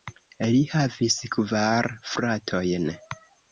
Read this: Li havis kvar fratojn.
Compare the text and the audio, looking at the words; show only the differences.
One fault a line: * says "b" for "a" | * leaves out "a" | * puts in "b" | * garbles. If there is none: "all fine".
all fine